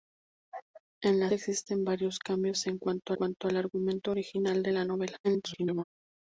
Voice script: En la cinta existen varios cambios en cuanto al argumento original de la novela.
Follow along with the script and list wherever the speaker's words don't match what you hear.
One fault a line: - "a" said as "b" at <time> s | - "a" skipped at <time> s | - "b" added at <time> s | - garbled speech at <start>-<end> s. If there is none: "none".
- "cinta" skipped at 1.3 s
- "cuanto" added at 3.1 s
- garbled speech at 5.2-5.8 s